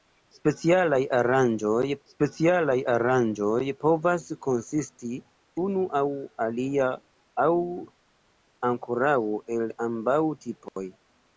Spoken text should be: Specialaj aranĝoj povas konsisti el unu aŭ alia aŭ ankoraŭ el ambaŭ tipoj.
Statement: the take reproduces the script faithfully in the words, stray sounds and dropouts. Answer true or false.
false